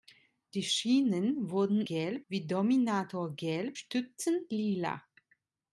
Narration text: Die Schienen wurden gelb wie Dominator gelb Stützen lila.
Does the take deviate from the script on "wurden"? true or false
false